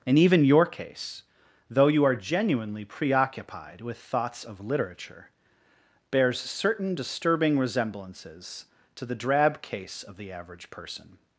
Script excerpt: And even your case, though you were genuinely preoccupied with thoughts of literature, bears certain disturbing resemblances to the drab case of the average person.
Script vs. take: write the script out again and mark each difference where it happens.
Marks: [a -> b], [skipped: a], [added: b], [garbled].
And even your case, though you [were -> are] genuinely preoccupied with thoughts of literature, bears certain disturbing resemblances to the drab case of the average person.